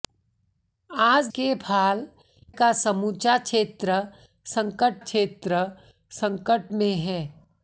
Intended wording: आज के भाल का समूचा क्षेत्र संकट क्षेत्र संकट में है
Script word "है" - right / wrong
right